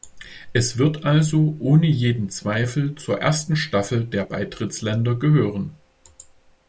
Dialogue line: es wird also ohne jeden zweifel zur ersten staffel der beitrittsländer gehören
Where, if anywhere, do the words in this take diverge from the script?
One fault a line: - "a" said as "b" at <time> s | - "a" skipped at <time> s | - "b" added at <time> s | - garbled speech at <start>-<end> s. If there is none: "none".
none